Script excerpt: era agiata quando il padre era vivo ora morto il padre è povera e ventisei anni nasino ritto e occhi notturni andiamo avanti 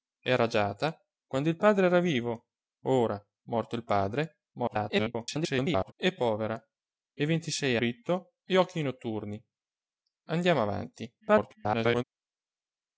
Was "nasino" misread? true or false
true